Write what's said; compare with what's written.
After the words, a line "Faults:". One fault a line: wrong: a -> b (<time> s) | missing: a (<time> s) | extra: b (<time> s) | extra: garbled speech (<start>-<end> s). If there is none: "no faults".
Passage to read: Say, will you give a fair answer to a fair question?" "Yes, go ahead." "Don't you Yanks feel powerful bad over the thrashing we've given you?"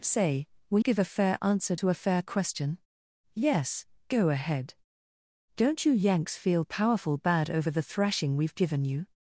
Say, will give a fair answer to a fair question?" "Yes, go ahead." "Don't you Yanks feel powerful bad over the thrashing we've given you?"
Faults:
missing: you (0.8 s)